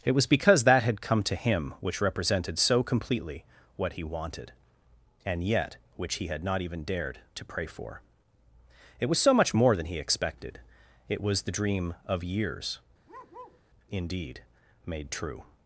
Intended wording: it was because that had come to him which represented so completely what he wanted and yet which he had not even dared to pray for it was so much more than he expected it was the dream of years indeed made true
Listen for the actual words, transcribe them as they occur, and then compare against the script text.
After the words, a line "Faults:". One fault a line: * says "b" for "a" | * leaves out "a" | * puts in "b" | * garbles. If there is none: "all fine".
it was because that had come to him which represented so completely what he wanted and yet which he had not even dared to pray for it was so much more than he expected it was the dream of years indeed made true
Faults:
all fine